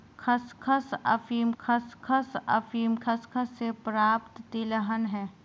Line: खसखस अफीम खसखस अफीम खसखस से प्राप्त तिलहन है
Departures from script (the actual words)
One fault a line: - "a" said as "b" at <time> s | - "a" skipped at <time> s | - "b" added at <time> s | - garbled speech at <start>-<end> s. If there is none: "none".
none